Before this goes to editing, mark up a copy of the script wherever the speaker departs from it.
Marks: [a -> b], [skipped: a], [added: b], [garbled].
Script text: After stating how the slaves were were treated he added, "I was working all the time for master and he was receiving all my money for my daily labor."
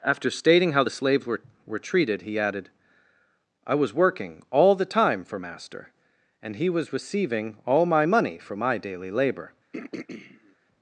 After stating how the slaves were were treated he added, "I was working all the time for master and he was receiving all my money for my daily labor."